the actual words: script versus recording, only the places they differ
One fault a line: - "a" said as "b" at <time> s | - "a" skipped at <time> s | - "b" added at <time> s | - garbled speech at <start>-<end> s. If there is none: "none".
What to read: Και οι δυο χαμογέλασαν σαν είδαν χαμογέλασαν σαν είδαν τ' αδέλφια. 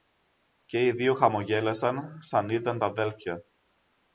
- "χαμογέλασαν σαν είδαν" skipped at 2.8 s